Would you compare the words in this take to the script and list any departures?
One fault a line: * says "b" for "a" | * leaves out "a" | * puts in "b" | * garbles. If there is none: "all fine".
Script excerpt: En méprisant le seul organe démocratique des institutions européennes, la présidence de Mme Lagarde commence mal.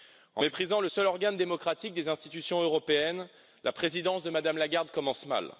all fine